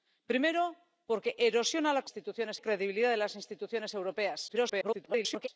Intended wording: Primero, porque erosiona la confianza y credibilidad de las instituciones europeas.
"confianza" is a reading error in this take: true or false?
true